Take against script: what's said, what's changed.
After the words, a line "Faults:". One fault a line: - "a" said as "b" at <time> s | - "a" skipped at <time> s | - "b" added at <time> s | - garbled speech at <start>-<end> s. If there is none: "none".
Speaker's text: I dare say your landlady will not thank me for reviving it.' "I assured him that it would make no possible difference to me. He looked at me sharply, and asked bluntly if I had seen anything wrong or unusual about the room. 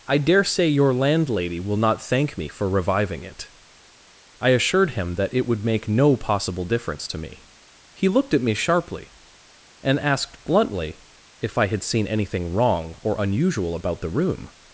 I dare say your landlady will not thank me for reviving it.' "I assured him that it would make no possible difference to me. He looked at me sharply, and asked bluntly if I had seen anything wrong or unusual about the room.
Faults:
none